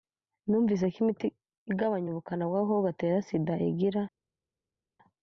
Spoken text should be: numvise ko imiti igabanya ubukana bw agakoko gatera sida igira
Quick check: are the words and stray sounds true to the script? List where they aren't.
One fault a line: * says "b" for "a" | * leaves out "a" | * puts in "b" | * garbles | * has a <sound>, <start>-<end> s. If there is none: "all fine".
all fine